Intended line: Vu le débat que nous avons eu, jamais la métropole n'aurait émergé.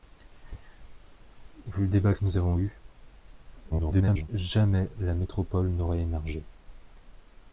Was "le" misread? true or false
false